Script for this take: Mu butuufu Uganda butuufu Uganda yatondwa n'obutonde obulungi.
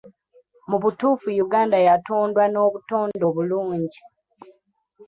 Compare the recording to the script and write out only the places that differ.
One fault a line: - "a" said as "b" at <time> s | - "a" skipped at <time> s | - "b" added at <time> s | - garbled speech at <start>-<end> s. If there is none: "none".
- "butuufu Uganda" skipped at 1.8 s